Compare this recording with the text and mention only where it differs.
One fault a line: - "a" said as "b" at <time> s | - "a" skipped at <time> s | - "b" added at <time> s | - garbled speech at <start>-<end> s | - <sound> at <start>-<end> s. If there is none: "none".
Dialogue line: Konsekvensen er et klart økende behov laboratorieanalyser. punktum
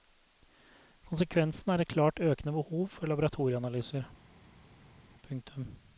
- "for" added at 2.9 s